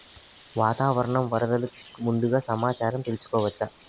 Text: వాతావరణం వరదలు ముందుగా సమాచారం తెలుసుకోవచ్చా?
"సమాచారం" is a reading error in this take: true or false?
false